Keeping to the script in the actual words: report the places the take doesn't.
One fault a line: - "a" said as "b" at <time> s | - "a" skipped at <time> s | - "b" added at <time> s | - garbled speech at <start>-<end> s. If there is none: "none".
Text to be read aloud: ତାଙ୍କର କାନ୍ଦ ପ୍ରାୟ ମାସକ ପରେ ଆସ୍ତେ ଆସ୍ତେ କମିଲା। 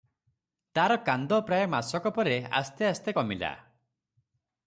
- "ତାଙ୍କର" said as "ତାର" at 0.8 s